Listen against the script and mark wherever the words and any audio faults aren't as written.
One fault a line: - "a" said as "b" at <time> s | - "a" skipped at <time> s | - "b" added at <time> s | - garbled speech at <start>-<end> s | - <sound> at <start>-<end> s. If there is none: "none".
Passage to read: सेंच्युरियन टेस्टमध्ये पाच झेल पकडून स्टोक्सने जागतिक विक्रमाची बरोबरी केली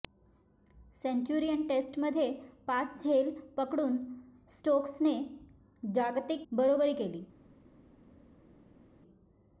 - "विक्रमाची" skipped at 6.5 s